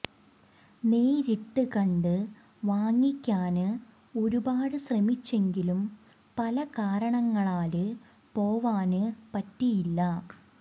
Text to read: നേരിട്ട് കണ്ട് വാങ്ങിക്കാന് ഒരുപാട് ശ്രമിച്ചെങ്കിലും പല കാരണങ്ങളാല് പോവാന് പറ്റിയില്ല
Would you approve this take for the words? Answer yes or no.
yes